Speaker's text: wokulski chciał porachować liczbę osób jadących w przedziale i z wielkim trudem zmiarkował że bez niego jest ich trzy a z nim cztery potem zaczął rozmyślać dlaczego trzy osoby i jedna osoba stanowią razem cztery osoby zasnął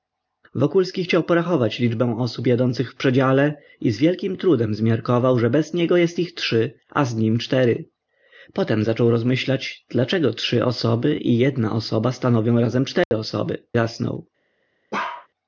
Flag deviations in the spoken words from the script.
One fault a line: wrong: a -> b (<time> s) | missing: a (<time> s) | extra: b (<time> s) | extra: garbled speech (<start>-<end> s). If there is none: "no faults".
no faults